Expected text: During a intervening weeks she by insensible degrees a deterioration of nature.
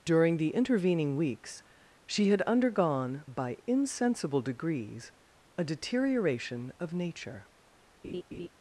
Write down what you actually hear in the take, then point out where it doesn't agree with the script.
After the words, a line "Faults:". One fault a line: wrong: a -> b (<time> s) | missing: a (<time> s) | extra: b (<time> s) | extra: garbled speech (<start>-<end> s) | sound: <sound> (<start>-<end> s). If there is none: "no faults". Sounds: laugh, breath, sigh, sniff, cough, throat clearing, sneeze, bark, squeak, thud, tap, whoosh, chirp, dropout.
During the intervening weeks she had undergone by insensible degrees a deterioration of nature.
Faults:
wrong: a -> the (0.4 s)
extra: had undergone (2.3 s)
sound: laugh (8.0-8.5 s)